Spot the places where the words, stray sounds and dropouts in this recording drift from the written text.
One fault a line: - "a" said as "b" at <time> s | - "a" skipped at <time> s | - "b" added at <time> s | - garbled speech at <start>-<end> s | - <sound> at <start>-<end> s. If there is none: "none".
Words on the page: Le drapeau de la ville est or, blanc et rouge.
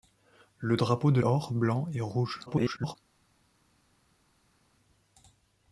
- "la ville est" skipped at 1.2 s
- garbled speech at 2.5-3.0 s